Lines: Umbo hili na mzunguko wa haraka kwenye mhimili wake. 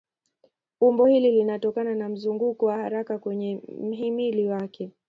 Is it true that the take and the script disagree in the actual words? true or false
true